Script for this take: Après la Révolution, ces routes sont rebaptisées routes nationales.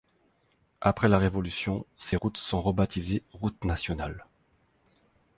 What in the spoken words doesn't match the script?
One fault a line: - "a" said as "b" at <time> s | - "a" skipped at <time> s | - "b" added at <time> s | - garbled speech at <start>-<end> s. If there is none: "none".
none